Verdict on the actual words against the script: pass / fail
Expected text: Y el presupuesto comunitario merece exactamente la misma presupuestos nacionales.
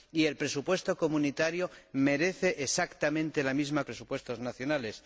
pass